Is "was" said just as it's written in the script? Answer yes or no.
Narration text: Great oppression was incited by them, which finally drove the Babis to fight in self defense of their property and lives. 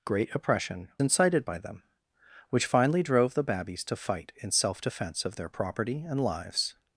no